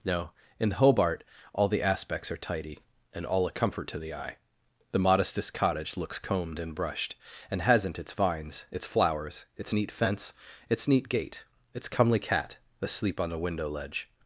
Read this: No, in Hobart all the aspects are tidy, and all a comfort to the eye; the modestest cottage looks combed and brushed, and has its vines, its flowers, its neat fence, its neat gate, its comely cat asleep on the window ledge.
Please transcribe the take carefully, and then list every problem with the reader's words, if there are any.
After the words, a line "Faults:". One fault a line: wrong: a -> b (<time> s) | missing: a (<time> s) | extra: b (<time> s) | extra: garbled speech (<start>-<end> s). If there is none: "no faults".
No, in Hobart all the aspects are tidy, and all a comfort to the eye; the modestest cottage looks combed and brushed, and hasn't its vines, its flowers, its neat fence, its neat gate, its comely cat asleep on the window ledge.
Faults:
wrong: has -> hasn't (7.6 s)